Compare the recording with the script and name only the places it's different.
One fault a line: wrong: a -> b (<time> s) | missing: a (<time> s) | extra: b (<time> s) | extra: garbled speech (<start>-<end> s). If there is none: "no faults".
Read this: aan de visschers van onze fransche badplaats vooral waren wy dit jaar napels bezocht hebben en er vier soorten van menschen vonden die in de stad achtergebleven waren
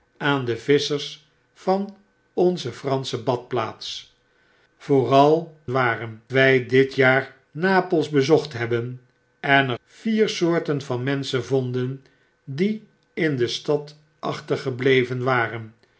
no faults